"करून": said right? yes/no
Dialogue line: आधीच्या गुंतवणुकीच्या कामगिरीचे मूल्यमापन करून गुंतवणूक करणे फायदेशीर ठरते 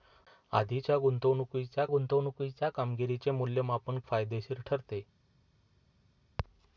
no